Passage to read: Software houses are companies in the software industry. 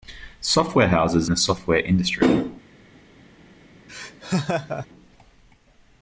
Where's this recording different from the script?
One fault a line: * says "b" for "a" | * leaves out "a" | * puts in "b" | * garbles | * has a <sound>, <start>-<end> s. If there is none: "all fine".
* leaves out "are companies in"
* has a laugh, 3.9-4.9 s